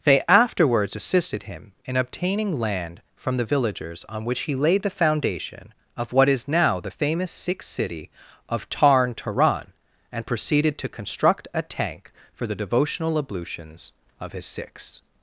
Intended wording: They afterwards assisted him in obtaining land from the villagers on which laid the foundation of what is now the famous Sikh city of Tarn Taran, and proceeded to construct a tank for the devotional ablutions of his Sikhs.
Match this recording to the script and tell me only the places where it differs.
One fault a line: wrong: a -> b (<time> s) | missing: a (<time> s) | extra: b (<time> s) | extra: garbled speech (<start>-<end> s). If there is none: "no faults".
extra: he (4.4 s)